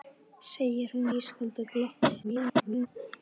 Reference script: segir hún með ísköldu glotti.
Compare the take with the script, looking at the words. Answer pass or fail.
fail